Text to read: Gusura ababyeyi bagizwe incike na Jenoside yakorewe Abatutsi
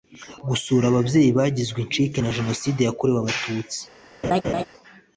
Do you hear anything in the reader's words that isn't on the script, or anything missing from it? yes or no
no